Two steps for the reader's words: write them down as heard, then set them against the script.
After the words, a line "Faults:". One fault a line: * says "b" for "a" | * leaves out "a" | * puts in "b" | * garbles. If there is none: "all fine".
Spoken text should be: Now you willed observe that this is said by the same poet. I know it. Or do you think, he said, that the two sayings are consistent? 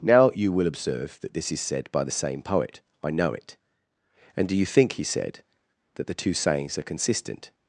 Now you will observe that this is said by the same poet. I know it. And do you think, he said, that the two sayings are consistent?
Faults:
* says "will" for "willed"
* says "And" for "Or"